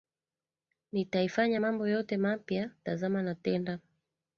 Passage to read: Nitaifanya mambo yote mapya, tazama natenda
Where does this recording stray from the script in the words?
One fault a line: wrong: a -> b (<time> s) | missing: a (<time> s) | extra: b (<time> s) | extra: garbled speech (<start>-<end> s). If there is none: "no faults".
no faults